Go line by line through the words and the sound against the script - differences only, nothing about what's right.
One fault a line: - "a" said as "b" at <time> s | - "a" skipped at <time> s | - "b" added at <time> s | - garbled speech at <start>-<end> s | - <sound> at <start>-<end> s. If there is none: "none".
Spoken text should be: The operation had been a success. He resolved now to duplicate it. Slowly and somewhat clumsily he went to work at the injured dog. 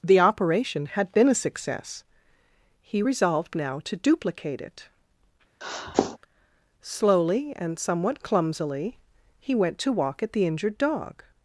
- sniff at 5.6-6.2 s
- "work" said as "walk" at 9.9 s